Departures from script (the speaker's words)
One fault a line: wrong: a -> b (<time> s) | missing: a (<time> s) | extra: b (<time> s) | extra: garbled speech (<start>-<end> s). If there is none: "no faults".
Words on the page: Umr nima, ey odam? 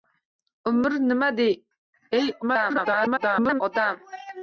extra: garbled speech (2.4-3.6 s)